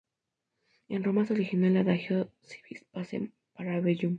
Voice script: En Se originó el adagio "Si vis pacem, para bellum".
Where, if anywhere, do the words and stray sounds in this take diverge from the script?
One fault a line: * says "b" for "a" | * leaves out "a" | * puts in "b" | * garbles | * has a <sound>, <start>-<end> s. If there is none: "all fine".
* puts in "Roma"